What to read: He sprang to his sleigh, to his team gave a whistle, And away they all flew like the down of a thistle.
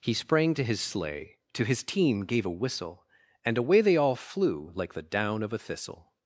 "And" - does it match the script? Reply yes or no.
yes